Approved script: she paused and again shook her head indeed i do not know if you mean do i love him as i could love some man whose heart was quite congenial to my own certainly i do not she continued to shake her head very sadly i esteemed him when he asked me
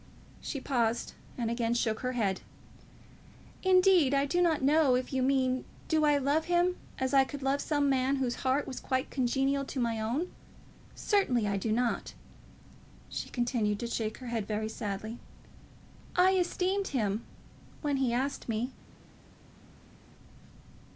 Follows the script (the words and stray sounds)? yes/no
yes